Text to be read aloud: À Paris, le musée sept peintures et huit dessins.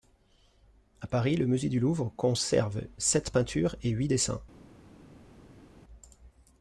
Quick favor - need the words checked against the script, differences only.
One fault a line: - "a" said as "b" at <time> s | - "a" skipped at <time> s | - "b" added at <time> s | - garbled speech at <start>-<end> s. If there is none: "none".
- "du Louvre conserve" added at 1.7 s